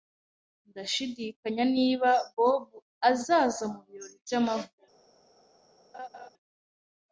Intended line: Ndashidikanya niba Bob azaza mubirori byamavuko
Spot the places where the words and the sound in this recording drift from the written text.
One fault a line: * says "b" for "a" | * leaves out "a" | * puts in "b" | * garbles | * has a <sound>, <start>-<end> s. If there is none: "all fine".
* has a laugh, 5.9-6.3 s